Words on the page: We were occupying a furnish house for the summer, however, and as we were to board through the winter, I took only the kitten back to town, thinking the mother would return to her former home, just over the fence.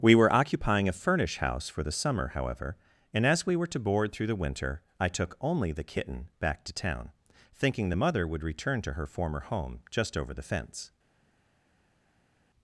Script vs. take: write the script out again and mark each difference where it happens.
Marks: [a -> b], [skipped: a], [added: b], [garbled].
We were occupying a furnish house for the summer, however, and as we were to board through the winter, I took only the kitten back to town, thinking the mother would return to her former home, just over the fence.